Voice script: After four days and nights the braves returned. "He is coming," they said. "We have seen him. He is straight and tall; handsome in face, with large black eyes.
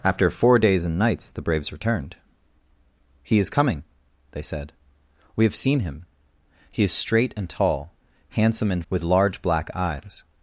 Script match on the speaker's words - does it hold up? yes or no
no